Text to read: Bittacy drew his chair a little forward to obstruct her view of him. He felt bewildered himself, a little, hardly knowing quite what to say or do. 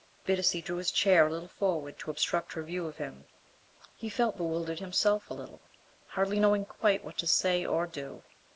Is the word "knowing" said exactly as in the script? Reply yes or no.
yes